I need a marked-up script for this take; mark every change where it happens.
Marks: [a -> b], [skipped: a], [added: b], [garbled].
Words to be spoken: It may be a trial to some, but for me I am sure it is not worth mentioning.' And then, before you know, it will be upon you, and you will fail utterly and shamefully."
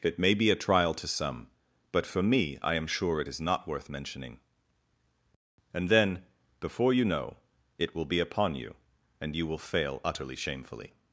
It may be a trial to some, but for me I am sure it is not worth mentioning.' And then, before you know, it will be upon you, and you will fail utterly [skipped: and] shamefully."